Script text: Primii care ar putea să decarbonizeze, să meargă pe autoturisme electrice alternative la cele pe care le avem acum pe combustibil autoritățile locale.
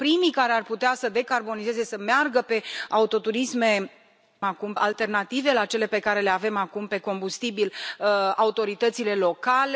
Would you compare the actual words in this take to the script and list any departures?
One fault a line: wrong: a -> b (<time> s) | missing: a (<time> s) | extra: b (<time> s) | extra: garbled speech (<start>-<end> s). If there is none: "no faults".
wrong: electrice -> acum (4.4 s)